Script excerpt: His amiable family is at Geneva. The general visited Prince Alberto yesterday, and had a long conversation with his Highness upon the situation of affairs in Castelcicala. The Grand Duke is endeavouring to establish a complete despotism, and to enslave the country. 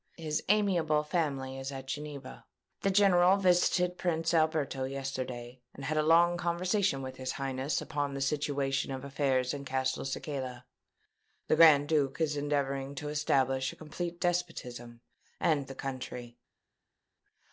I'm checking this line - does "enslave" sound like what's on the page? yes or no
no